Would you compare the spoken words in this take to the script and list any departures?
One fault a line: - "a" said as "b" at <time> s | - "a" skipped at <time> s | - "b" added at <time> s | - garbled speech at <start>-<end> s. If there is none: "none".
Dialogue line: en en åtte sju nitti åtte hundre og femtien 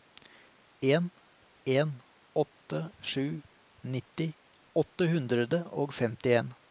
none